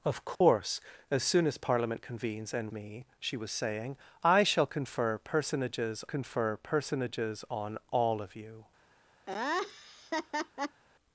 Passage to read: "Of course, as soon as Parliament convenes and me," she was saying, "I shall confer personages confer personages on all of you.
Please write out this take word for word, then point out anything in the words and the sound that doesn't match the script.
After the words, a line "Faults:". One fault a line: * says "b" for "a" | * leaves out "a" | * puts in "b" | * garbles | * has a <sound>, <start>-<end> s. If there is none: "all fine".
"Of course, as soon as Parliament convenes and me," she was saying, "I shall confer personages confer personages on all of you.
Faults:
* has a dropout, 0.4-0.4 s
* has a laugh, 9.3-10.8 s